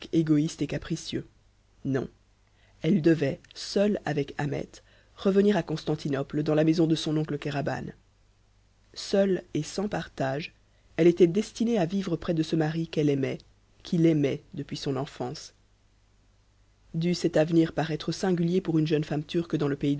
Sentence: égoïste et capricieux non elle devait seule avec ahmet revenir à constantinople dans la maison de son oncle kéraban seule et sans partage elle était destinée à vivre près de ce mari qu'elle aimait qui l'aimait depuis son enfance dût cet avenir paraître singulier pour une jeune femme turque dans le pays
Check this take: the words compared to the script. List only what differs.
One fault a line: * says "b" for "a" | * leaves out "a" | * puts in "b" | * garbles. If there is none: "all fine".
all fine